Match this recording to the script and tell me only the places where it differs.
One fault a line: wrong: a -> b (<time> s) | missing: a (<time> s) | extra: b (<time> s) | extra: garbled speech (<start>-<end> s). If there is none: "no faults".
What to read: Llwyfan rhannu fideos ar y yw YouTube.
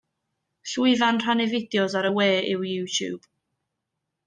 extra: we (2.2 s)